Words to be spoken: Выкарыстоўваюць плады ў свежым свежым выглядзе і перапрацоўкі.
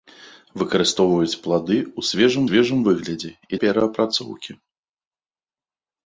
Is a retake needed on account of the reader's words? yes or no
no